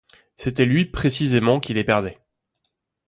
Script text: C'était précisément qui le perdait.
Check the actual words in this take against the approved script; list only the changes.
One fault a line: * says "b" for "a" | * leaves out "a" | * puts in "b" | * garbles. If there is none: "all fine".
* puts in "lui"
* says "les" for "le"